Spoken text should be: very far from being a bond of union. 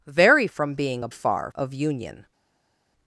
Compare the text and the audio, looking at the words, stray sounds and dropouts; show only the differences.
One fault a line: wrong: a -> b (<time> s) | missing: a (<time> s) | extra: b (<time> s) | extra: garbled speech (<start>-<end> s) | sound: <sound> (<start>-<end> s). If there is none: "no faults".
missing: far (0.5 s)
wrong: bond -> far (1.1 s)